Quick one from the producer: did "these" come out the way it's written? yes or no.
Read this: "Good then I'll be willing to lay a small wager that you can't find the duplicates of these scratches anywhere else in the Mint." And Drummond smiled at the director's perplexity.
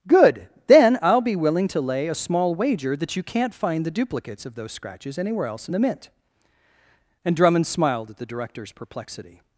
no